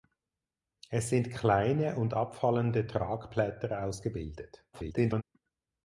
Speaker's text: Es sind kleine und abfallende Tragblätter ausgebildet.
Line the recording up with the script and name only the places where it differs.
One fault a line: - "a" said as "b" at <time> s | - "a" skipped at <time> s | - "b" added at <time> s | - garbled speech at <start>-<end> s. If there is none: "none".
- garbled speech at 4.7-5.2 s